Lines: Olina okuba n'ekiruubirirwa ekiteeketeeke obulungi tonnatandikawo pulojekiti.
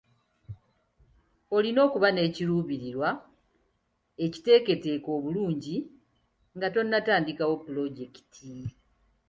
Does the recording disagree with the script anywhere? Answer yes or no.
yes